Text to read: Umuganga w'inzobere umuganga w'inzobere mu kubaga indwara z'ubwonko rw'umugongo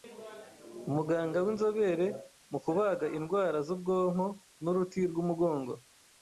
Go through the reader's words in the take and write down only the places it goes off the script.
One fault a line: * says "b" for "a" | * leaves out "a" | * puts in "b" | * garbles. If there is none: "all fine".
* leaves out "umuganga w'inzobere"
* puts in "n'uruti"